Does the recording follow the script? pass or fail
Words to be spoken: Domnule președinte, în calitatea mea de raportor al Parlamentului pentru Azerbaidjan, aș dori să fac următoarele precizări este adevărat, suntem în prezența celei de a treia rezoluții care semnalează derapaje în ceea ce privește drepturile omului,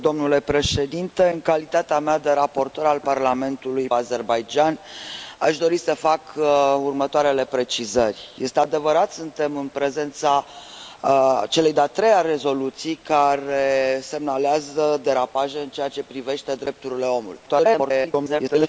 fail